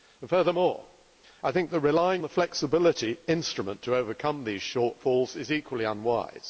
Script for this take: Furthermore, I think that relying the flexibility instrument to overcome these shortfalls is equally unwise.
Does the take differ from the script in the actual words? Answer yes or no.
no